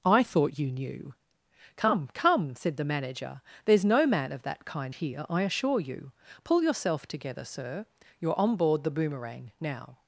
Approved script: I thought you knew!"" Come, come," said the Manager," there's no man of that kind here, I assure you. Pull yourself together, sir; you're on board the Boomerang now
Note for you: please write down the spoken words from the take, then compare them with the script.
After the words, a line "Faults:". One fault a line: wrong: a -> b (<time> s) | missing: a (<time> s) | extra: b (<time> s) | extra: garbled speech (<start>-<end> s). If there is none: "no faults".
I thought you knew!"" Come, come," said the Manager," there's no man of that kind here, I assure you. Pull yourself together, sir; you're on board the Boomerang now
Faults:
no faults